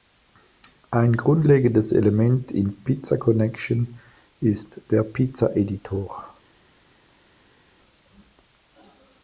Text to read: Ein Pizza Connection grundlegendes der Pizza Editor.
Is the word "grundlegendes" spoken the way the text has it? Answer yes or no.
no